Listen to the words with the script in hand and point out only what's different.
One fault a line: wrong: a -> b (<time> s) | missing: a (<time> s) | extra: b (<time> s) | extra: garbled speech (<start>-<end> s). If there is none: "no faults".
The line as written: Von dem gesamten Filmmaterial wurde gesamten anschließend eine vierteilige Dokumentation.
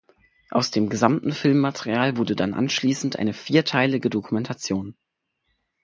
wrong: Von -> Aus (0.5 s)
wrong: gesamten -> dann (2.4 s)